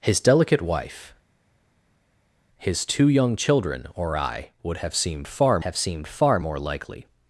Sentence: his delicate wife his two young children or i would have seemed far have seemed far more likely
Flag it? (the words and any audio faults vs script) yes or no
no